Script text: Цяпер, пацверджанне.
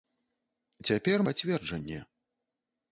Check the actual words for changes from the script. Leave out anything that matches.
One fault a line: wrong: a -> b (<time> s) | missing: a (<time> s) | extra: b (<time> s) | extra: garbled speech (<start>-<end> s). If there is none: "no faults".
no faults